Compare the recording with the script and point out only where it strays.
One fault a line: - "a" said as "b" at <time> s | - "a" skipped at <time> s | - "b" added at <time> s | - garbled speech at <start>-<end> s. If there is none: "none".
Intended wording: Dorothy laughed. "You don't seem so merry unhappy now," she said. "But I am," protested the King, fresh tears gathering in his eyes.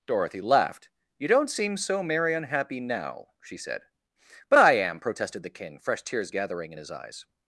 none